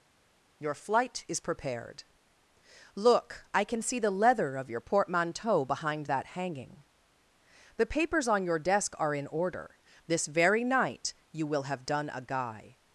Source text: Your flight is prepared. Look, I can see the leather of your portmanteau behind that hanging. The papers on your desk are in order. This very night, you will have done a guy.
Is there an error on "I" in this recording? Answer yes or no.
no